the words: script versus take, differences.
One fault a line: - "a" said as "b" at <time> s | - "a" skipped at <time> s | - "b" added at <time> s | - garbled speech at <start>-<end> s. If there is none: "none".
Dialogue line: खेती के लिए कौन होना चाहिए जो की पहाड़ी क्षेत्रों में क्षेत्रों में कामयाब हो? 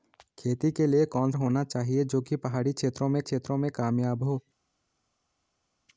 none